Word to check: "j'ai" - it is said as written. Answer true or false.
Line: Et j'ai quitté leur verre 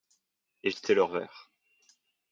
false